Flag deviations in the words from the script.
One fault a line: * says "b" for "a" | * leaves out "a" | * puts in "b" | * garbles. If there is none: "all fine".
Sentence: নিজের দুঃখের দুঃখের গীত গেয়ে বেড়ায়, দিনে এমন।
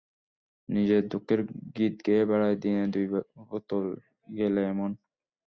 * leaves out "দুঃখের"
* puts in "দুই বোতল গেলে"